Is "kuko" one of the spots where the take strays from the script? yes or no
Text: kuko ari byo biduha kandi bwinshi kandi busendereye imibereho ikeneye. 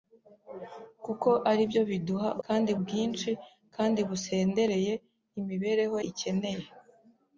no